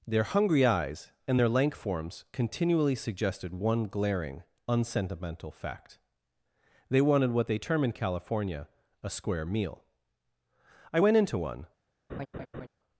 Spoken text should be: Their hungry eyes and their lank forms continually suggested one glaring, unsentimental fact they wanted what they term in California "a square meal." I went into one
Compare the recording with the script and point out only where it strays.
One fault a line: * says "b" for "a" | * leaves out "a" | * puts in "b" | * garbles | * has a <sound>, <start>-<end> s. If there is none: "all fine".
* has a laugh, 12.1-12.7 s